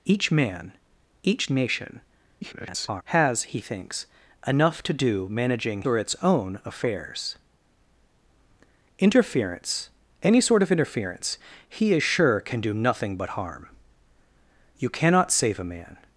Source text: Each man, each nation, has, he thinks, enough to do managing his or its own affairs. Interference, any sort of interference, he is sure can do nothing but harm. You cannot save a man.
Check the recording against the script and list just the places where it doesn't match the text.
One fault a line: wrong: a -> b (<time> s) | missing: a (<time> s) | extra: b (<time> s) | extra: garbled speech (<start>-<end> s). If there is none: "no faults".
extra: garbled speech (2.4-3.0 s)
missing: his (5.8 s)